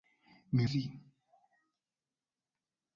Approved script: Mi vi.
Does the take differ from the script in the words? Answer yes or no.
no